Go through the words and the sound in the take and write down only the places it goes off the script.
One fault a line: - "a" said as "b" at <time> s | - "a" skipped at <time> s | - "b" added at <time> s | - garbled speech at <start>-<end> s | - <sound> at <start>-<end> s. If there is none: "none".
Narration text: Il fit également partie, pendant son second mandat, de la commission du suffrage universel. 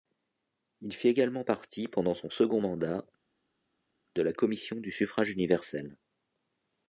none